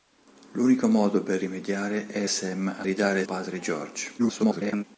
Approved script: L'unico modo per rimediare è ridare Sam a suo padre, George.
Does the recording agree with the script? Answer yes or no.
no